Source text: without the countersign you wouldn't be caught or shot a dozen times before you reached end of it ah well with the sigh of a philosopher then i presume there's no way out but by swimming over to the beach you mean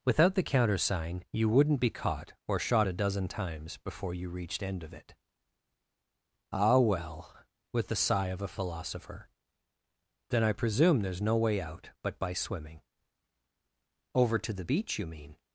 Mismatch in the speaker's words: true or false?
false